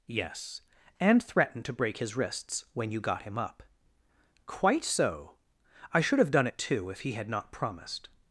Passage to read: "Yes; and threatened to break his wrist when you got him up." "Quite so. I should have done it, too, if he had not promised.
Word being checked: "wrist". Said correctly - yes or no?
no